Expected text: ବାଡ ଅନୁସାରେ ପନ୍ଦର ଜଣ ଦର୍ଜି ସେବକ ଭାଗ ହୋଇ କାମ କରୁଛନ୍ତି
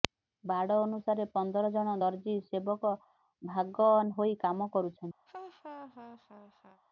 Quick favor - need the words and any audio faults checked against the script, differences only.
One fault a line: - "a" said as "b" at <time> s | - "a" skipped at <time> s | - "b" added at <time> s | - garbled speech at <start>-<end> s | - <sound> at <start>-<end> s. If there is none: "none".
- laugh at 5.3-6.8 s